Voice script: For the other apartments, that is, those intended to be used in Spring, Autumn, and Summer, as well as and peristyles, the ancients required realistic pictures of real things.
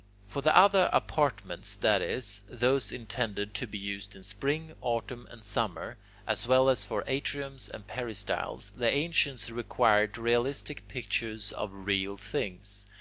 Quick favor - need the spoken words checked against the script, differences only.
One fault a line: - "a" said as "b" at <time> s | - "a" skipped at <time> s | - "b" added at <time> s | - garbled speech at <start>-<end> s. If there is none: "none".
- "for atriums" added at 6.8 s